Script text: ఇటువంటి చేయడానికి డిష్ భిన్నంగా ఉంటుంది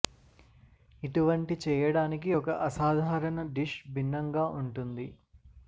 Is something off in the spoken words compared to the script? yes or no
yes